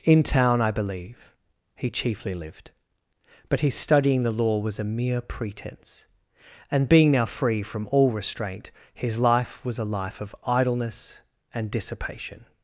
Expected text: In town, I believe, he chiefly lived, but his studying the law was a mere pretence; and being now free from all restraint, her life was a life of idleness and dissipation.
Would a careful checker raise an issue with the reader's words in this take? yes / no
yes